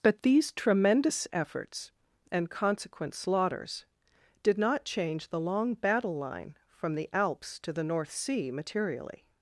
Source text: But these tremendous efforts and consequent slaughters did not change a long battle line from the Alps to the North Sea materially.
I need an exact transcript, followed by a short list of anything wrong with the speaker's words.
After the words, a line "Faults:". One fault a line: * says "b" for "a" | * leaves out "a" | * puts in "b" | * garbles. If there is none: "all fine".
But these tremendous efforts and consequent slaughters did not change the long battle line from the Alps to the North Sea materially.
Faults:
* says "the" for "a"